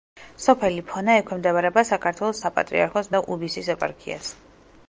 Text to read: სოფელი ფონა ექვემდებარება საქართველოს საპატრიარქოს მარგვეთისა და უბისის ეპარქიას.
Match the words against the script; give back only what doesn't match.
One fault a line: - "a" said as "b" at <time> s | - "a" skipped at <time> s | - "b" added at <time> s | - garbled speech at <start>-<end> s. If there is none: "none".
- "მარგვეთისა" skipped at 3.1 s